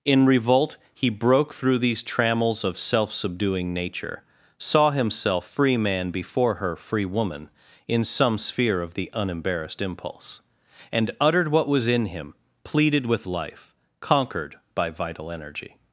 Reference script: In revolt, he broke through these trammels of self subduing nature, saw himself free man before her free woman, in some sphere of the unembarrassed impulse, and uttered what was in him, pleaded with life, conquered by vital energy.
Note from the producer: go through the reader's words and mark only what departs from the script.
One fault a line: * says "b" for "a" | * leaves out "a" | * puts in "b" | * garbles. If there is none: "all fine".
all fine